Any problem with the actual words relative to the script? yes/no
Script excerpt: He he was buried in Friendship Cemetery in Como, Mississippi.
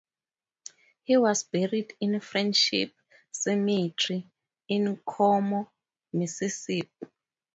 yes